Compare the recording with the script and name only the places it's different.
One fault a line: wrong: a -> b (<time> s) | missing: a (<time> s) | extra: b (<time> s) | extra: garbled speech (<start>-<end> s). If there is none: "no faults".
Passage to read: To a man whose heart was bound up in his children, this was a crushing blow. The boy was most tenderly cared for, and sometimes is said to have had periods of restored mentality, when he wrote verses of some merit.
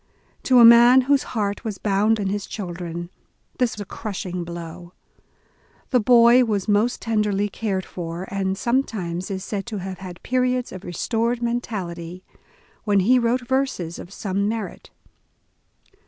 missing: up (2.2 s)
missing: was (3.8 s)